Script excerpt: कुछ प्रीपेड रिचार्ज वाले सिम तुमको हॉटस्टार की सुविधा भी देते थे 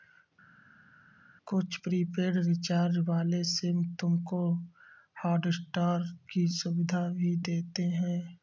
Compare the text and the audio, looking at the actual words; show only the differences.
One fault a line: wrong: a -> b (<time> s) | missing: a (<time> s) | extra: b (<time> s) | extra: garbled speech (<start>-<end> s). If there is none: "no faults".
wrong: थे -> हैं (7.9 s)